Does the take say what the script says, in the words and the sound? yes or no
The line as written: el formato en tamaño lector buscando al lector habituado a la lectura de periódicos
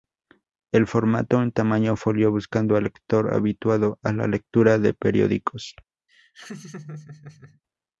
no